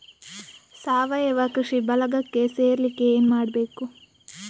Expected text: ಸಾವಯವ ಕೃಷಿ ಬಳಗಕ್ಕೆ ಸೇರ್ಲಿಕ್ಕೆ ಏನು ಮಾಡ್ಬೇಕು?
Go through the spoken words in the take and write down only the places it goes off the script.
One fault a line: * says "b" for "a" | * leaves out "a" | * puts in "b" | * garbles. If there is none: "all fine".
all fine